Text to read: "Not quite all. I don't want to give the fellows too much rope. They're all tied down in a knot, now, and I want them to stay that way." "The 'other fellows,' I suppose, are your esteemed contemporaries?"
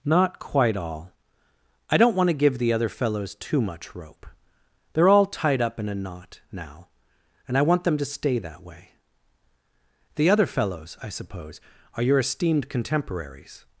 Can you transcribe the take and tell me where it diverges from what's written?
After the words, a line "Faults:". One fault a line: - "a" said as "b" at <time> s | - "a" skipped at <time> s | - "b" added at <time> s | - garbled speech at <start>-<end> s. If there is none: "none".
"Not quite all. I don't want to give the other fellows too much rope. They're all tied up in a knot, now, and I want them to stay that way." "The 'other fellows,' I suppose, are your esteemed contemporaries?"
Faults:
- "other" added at 2.7 s
- "down" said as "up" at 5.6 s